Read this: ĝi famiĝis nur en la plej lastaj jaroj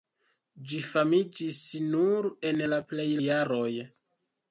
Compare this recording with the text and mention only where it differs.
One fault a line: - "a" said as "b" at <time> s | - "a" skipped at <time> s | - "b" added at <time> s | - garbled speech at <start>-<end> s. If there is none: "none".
- "lastaj" skipped at 3.1 s